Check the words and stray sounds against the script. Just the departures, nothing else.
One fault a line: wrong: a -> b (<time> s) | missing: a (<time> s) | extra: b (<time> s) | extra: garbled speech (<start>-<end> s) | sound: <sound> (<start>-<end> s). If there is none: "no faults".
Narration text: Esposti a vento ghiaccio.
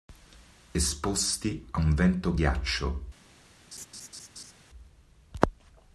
extra: un (1.8 s)
sound: laugh (3.7-4.5 s)